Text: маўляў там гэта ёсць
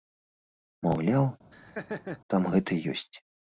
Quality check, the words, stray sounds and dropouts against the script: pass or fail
fail